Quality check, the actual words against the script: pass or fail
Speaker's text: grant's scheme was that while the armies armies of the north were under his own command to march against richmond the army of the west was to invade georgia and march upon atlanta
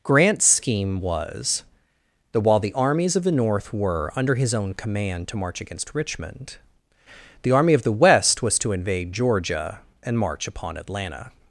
fail